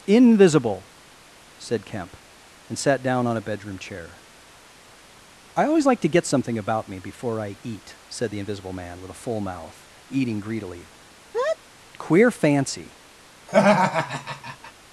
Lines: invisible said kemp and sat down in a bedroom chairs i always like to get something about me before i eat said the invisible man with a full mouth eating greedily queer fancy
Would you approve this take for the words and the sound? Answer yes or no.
no